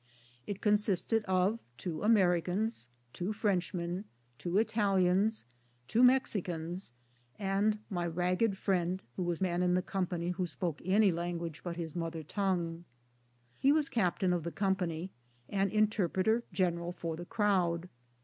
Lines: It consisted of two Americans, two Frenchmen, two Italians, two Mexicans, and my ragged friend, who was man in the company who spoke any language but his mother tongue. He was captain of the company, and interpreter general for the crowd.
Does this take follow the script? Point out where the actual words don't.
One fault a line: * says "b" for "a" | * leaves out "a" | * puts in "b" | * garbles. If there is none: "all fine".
all fine